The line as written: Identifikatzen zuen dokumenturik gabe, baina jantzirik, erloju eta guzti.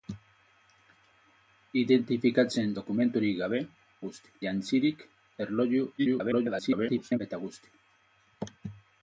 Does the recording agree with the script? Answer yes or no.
no